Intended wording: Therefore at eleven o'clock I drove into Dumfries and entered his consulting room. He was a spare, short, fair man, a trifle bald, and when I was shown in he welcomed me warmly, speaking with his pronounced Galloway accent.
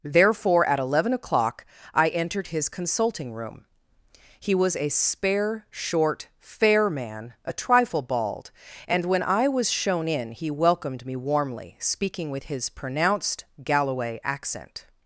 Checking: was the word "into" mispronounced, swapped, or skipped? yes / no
yes